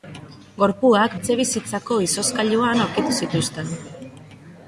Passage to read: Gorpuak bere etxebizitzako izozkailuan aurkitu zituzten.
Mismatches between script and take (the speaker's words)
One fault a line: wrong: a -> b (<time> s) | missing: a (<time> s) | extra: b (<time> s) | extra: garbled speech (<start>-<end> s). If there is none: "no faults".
missing: bere (1.2 s)